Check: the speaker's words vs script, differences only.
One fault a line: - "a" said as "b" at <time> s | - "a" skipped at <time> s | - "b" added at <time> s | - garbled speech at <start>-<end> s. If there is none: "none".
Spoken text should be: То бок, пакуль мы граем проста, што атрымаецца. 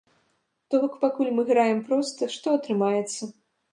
none